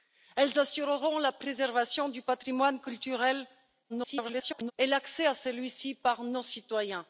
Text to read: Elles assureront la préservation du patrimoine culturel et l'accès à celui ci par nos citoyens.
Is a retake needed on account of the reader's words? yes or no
yes